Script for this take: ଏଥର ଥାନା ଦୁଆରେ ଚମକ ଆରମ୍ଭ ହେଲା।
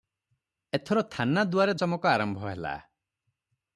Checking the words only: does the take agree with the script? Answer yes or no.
yes